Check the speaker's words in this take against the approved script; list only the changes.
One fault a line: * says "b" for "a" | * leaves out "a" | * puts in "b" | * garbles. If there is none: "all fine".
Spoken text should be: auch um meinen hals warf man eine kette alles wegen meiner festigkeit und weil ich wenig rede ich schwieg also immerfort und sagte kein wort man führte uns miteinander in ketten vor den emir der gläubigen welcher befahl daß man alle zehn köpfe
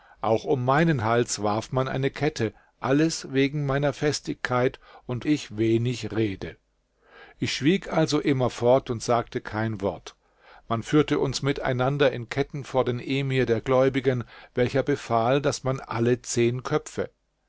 * leaves out "weil"